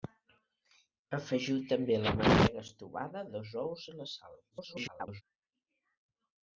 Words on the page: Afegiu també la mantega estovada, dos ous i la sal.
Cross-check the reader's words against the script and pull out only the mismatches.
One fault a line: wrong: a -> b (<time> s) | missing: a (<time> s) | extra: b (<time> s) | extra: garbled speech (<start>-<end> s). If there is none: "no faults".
extra: garbled speech (4.5-5.2 s)